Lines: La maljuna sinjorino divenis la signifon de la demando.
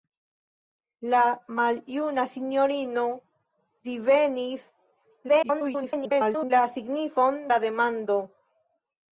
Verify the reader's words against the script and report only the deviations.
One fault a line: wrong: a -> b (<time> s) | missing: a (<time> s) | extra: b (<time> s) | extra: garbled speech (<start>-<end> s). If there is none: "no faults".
extra: garbled speech (5.3-6.5 s)
missing: de (7.4 s)